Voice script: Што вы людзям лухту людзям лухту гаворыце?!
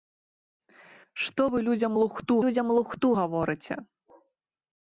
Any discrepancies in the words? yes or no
no